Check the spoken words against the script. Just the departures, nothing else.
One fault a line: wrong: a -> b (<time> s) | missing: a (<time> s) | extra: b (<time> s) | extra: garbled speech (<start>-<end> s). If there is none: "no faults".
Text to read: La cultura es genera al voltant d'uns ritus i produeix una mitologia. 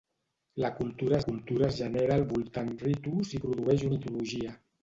extra: cultura (1.2 s)
missing: d'uns (2.7 s)
missing: una (3.9 s)